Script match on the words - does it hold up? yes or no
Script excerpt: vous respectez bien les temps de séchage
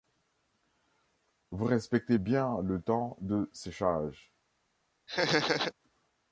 no